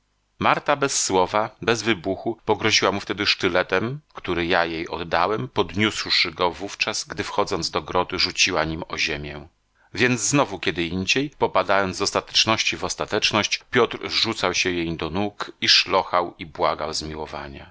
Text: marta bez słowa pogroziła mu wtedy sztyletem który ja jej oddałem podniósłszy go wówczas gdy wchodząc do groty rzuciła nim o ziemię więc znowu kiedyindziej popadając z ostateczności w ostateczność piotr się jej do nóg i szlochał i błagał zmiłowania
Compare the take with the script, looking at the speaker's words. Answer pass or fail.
fail